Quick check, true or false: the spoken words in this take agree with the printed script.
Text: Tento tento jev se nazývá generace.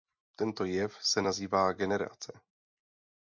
false